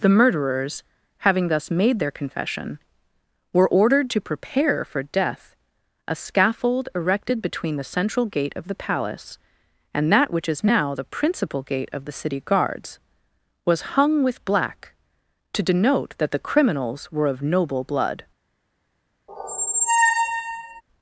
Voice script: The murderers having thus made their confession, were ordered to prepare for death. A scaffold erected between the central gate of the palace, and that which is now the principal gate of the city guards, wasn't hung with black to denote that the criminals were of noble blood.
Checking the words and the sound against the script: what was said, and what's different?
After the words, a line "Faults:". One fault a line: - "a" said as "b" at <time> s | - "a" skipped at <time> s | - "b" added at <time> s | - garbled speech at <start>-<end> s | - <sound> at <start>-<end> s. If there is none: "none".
The murderers having thus made their confession, were ordered to prepare for death. A scaffold erected between the central gate of the palace, and that which is now the principal gate of the city guards, was hung with black to denote that the criminals were of noble blood.
Faults:
- "wasn't" said as "was" at 13.7 s
- squeak at 19.3-20.8 s